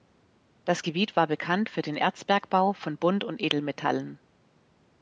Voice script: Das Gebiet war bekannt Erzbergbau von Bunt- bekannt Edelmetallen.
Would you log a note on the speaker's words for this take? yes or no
yes